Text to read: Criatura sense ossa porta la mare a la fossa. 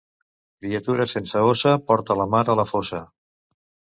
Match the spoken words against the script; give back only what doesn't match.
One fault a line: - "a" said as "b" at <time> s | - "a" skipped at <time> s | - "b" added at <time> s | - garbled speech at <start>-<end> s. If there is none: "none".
none